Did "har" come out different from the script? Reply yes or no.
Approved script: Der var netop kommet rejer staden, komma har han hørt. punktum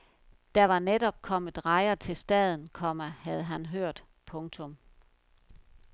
yes